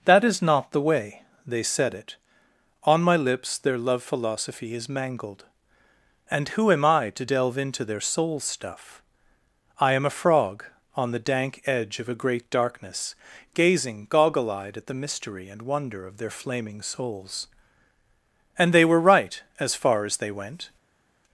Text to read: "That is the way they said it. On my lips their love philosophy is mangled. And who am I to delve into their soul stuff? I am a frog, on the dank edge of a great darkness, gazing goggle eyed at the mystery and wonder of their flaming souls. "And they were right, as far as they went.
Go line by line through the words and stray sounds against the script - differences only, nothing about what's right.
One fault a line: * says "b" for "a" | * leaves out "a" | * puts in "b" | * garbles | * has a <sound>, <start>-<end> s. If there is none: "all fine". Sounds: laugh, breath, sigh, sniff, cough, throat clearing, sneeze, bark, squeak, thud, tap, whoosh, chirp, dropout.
* puts in "not"